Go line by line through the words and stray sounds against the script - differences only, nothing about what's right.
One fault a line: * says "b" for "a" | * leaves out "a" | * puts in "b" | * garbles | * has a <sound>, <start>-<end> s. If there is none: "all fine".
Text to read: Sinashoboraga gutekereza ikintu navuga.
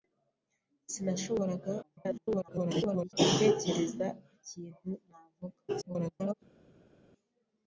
* garbles
* garbles